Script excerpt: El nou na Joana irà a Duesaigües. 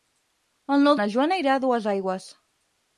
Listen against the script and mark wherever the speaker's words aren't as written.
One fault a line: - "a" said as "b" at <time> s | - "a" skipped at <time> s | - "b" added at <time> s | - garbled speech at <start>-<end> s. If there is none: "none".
none